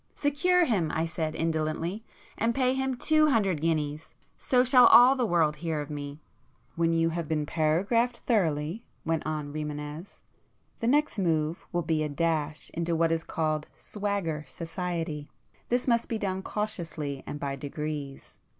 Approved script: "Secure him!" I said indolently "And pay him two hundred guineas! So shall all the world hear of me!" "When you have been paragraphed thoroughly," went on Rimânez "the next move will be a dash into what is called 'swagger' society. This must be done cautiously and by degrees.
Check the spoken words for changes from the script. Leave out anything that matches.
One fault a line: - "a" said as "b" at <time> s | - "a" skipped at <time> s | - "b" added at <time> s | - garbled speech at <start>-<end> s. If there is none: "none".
none